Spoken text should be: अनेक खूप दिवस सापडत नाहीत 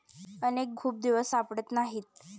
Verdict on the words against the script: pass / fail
pass